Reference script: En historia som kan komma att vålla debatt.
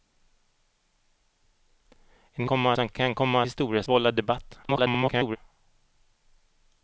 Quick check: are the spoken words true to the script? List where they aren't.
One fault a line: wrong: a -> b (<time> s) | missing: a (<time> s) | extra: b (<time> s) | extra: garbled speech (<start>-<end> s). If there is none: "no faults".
wrong: historia -> komma (2.4 s)
wrong: att -> historia (3.4 s)
extra: garbled speech (4.6-5.4 s)